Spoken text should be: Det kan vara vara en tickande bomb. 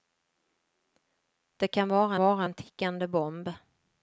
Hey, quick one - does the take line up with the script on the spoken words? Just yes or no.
yes